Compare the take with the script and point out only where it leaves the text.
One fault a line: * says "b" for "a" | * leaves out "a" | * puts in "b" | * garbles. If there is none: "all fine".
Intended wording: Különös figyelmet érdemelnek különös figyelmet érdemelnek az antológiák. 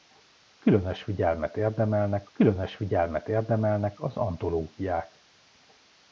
all fine